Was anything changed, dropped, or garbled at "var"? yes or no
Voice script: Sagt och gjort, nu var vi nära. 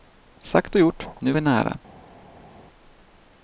yes